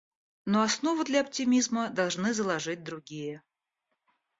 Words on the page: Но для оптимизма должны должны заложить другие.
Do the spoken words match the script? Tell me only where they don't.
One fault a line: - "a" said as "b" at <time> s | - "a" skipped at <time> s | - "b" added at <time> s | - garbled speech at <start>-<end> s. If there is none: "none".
- "основу" added at 0.6 s
- "должны" skipped at 2.3 s